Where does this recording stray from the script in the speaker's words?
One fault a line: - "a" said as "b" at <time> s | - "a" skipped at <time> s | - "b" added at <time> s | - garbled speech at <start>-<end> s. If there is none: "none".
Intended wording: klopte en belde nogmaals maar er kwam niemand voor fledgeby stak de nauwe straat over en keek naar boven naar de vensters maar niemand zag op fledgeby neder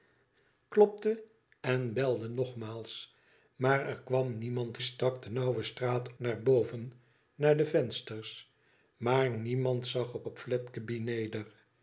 - "voor fledgeby" skipped at 4.8 s
- "over en keek" skipped at 6.1 s
- "op" added at 10.2 s